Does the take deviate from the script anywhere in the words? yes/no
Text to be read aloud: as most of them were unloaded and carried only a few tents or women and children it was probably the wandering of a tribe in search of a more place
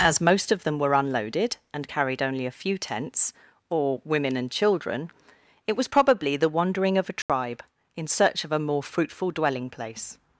yes